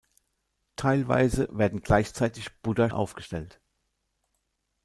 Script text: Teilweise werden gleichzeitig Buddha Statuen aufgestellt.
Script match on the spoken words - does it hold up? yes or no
no